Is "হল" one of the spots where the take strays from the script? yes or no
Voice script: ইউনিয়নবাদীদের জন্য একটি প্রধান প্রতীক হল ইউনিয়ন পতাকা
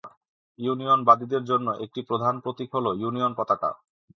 no